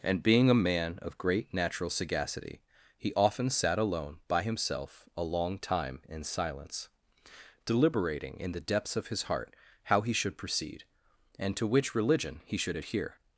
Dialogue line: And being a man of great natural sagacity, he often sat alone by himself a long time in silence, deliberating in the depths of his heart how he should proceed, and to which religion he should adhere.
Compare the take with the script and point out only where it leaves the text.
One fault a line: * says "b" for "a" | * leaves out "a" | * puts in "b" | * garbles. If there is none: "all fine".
all fine